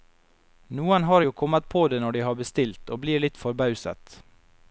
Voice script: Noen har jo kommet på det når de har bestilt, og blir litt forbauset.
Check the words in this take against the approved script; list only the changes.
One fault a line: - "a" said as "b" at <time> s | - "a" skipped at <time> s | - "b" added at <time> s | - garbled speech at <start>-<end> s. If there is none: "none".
none